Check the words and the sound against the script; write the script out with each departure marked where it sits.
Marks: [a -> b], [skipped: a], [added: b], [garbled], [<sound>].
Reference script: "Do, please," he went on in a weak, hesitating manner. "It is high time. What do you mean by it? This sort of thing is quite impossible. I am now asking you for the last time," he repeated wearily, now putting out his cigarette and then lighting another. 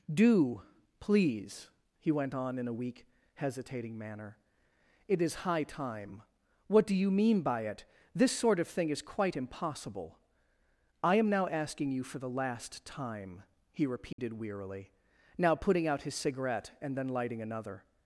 "Do, please," he went on in a weak, hesitating manner. "It is high time. What do you mean by it? This sort of thing is quite impossible. I am now asking you for the last time," he repeated [dropout] wearily, now putting out his cigarette and then lighting another.